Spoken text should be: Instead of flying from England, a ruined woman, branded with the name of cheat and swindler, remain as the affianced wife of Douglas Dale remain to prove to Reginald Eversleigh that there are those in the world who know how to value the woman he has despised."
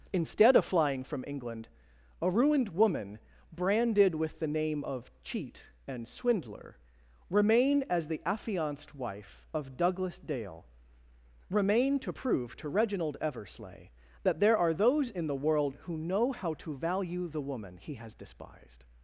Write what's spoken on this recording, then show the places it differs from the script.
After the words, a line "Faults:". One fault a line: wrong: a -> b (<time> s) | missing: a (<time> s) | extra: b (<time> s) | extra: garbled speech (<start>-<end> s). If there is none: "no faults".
Instead of flying from England, a ruined woman, branded with the name of cheat and swindler, remain as the affianced wife of Douglas Dale remain to prove to Reginald Eversleigh that there are those in the world who know how to value the woman he has despised."
Faults:
no faults